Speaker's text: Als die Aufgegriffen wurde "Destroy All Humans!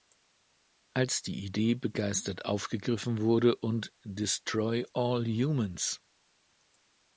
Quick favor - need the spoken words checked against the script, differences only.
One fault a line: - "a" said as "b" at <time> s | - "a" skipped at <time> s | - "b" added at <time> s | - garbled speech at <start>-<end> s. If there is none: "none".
- "Idee begeistert" added at 1.4 s
- "und" added at 3.5 s